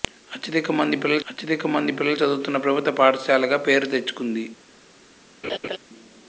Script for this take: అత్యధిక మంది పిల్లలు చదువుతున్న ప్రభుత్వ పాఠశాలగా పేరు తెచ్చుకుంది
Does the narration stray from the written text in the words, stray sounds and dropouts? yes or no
yes